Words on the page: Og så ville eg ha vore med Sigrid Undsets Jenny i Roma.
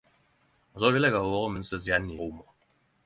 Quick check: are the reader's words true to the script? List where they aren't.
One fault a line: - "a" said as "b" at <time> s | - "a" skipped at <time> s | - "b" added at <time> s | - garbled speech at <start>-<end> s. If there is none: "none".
- "med Sigrid" skipped at 1.5 s
- "i" skipped at 2.2 s